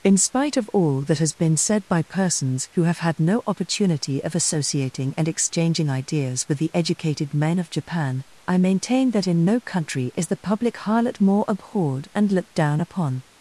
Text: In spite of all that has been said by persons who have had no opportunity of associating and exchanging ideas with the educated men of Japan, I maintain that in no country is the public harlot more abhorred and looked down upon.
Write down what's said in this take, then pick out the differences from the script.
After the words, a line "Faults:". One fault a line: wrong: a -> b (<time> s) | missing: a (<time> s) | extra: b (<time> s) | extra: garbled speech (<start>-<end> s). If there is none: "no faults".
In spite of all that has been said by persons who have had no opportunity of associating and exchanging ideas with the educated men of Japan, I maintain that in no country is the public harlot more abhorred and looked down upon.
Faults:
no faults